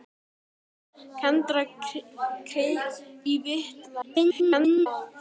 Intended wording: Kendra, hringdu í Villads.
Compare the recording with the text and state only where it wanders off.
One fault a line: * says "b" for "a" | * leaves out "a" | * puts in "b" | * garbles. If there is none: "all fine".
* leaves out "hringdu"
* garbles